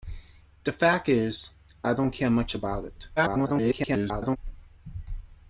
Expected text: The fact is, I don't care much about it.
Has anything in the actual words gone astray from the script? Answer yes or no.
yes